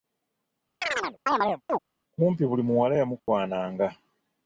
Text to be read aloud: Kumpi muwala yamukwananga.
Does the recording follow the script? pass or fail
fail